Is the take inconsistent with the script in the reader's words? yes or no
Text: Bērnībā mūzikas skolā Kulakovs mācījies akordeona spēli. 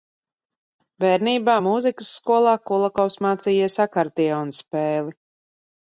no